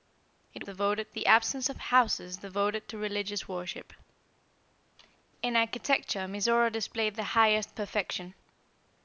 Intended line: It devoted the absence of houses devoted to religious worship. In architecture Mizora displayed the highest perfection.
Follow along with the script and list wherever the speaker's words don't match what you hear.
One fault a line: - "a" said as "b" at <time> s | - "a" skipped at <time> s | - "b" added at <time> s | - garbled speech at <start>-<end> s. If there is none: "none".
none